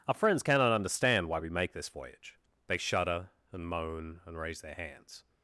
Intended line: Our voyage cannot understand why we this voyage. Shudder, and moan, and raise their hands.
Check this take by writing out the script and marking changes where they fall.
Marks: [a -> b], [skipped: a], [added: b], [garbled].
Our [voyage -> friends] cannot understand why we [added: make] this voyage. [added: They] Shudder, and moan, and raise their hands.